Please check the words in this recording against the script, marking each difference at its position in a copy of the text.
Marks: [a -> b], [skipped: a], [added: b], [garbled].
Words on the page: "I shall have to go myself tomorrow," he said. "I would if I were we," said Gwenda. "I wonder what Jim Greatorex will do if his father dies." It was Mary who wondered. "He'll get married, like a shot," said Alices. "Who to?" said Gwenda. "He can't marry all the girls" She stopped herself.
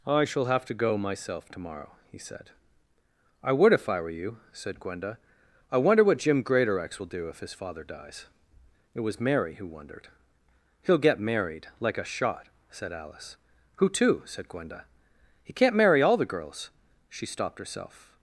"I shall have to go myself tomorrow," he said. "I would if I were [we," -> you] said Gwenda. "I wonder what Jim Greatorex will do if his father dies." It was Mary who wondered. "He'll get married, like a shot," said [Alices. -> Alice] "Who to?" said Gwenda. "He can't marry all the girls" She stopped herself.